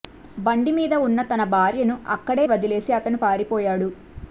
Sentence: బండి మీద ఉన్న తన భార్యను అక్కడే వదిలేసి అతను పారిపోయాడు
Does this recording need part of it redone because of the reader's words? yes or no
no